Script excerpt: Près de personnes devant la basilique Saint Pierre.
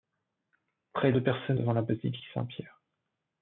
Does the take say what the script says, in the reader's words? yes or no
yes